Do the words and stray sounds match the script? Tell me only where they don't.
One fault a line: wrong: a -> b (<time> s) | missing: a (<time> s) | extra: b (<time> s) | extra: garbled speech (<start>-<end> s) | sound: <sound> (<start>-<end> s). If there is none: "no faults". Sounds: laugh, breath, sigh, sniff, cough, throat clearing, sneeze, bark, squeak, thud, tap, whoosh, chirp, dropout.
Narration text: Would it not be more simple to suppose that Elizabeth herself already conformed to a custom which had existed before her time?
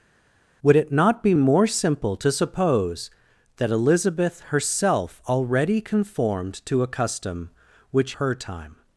missing: had existed before (8.1 s)